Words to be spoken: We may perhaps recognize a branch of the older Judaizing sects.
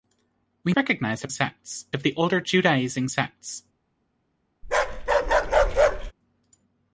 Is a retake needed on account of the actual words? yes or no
yes